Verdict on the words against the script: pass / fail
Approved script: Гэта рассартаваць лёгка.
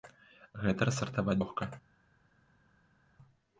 pass